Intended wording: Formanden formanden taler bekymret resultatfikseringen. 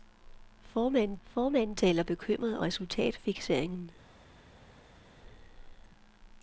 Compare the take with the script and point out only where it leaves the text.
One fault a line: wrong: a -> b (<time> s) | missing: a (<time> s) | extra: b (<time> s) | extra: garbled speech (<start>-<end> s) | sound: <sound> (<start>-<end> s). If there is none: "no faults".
no faults